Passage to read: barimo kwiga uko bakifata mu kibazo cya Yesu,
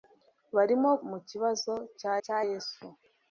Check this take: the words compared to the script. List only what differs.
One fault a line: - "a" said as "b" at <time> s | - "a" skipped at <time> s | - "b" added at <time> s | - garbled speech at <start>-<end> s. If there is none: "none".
- "kwiga uko bakifata" skipped at 0.9 s
- "cya" added at 2.2 s